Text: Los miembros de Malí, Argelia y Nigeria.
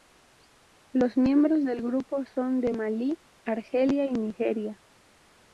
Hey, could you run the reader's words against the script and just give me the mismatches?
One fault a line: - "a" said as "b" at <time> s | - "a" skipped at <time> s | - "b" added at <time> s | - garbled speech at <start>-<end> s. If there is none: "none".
- "del grupo son" added at 1.6 s